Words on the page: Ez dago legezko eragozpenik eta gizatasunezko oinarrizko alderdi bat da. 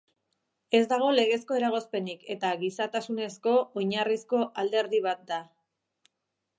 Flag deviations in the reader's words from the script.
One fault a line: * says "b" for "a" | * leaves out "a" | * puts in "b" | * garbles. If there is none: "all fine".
all fine